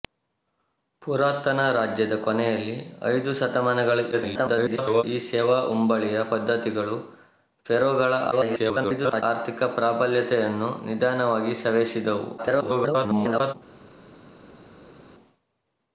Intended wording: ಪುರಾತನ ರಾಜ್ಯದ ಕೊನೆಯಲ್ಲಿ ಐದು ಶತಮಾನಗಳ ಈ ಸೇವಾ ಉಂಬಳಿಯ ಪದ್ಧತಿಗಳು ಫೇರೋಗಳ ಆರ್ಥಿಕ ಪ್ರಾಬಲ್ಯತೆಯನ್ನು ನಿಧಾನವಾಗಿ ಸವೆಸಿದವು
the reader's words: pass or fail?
fail